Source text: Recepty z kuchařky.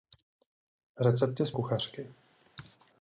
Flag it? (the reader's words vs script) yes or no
no